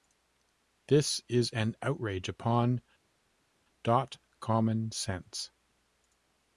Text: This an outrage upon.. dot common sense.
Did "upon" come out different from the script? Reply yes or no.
no